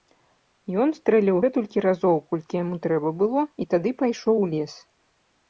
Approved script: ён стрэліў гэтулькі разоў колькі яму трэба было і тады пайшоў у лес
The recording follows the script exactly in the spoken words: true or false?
true